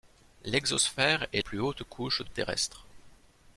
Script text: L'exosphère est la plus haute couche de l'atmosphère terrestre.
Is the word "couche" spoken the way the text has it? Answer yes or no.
yes